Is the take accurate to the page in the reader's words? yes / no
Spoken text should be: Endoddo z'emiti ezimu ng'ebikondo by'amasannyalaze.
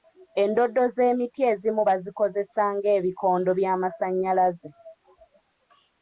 no